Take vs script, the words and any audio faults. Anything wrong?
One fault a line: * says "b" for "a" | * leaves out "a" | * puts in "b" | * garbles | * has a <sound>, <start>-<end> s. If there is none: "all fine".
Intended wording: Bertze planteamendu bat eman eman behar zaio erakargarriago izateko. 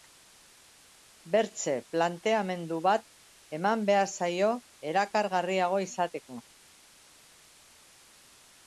* leaves out "eman"